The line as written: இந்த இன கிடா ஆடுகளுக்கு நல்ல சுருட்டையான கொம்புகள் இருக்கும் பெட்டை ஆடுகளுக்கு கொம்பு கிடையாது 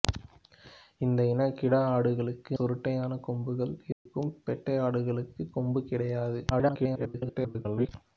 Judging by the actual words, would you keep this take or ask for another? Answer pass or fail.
fail